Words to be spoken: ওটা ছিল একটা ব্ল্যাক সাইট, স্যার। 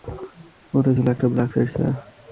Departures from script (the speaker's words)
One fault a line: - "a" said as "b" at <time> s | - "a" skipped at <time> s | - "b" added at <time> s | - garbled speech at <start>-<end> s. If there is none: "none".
none